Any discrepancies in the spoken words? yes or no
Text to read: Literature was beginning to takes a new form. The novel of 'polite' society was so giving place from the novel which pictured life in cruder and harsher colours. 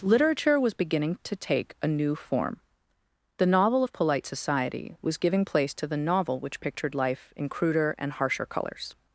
yes